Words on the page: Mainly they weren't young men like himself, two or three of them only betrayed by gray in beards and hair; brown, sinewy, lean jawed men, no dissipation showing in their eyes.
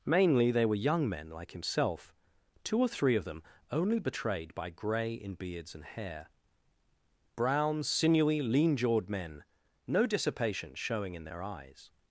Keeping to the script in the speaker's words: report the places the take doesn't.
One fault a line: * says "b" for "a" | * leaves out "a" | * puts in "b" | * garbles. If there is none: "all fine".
* says "were" for "weren't"